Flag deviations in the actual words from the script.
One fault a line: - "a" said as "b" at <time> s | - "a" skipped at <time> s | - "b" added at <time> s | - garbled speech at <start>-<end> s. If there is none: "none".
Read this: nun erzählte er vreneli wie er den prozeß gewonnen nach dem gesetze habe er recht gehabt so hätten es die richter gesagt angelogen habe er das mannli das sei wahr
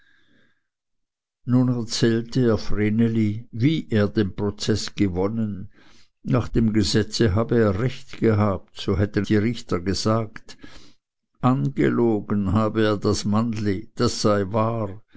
- "es" skipped at 9.3 s